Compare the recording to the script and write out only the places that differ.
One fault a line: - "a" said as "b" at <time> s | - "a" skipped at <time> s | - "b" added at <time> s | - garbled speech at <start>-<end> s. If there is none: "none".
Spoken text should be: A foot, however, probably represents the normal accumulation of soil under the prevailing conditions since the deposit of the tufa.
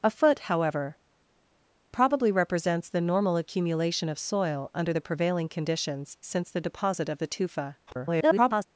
- garbled speech at 7.9-8.6 s